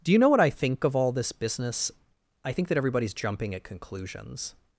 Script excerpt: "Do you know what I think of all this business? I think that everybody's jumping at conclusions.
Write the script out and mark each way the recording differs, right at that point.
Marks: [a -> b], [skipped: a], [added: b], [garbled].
"Do you know what I think of all this business? I think that everybody's jumping at conclusions.